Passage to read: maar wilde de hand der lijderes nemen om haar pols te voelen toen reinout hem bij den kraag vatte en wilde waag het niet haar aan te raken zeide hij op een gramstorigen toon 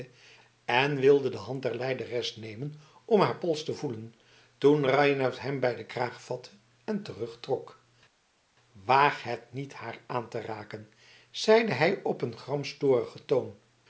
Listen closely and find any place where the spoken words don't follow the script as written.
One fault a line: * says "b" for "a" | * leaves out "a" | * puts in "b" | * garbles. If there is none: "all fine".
* says "en" for "maar"
* says "terugtrok" for "wilde"